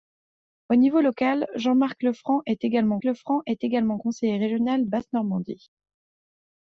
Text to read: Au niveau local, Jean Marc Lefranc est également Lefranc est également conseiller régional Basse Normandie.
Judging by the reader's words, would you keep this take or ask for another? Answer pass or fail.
pass